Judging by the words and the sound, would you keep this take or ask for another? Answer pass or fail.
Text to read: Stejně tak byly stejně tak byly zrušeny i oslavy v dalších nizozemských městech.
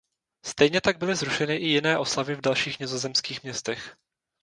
fail